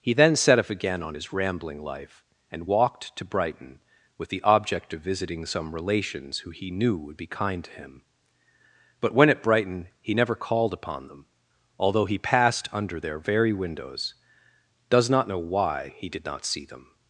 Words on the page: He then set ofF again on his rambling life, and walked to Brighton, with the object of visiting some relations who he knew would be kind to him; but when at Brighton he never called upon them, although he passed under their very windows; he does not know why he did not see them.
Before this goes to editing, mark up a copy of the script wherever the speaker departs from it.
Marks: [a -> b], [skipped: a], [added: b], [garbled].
He then set ofF again on his rambling life, and walked to Brighton, with the object of visiting some relations who he knew would be kind to him; but when at Brighton he never called upon them, although he passed under their very windows; [skipped: he] does not know why he did not see them.